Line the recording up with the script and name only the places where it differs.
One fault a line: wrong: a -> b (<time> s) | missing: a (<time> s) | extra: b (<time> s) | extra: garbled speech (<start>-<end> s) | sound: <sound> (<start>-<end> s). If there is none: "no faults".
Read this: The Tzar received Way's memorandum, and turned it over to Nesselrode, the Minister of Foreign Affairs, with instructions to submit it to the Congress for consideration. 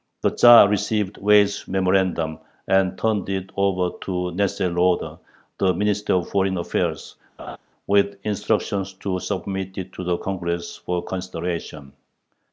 sound: laugh (7.4-7.6 s)